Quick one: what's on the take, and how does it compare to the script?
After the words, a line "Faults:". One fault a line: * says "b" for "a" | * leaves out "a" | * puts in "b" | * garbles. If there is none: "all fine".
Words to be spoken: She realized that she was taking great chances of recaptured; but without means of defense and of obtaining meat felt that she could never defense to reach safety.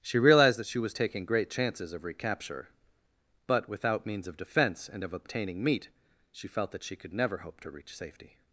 She realized that she was taking great chances of recapture; but without means of defense and of obtaining meat she felt that she could never hope to reach safety.
Faults:
* says "recapture" for "recaptured"
* puts in "she"
* says "hope" for "defense"